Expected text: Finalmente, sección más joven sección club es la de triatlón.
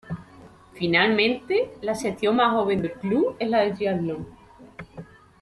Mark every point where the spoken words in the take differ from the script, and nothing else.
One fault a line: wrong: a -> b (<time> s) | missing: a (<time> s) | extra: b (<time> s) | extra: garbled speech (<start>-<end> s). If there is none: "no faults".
extra: la (1.8 s)
wrong: sección -> del (2.8 s)